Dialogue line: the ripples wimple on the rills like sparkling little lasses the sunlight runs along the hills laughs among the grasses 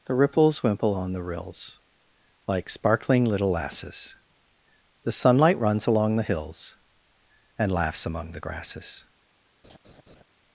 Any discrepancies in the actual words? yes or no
yes